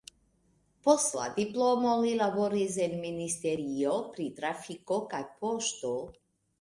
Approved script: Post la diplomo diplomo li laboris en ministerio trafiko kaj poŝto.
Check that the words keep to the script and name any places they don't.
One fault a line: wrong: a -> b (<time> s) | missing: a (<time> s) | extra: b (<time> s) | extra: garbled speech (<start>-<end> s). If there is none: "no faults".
missing: diplomo (1.9 s)
extra: pri (4.1 s)